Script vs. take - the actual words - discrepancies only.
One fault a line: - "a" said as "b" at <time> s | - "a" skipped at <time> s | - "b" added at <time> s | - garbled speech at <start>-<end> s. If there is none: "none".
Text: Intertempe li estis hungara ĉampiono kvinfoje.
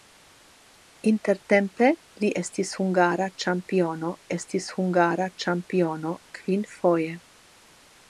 - "estis hungara ĉampiono" added at 4.4 s